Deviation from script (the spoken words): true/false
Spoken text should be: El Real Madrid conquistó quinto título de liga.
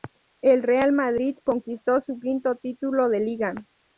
true